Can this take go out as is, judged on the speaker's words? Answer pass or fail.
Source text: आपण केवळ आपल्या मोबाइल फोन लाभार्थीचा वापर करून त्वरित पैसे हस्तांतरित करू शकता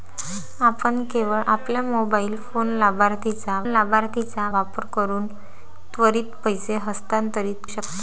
fail